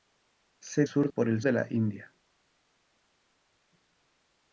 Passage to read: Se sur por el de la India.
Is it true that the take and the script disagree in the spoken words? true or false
false